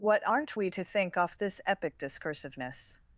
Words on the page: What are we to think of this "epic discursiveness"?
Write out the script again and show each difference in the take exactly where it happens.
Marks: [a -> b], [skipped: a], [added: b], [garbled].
What [are -> aren't] we to think [of -> off] this "epic discursiveness"?